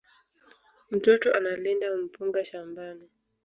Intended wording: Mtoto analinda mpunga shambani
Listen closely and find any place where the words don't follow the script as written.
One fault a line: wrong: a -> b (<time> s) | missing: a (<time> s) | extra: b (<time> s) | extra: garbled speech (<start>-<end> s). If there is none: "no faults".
no faults